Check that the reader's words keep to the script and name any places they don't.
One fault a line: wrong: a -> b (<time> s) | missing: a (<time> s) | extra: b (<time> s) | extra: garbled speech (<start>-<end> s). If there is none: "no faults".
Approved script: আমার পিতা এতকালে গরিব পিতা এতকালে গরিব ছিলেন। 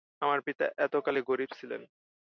missing: পিতা এতকালে গরিব (1.5 s)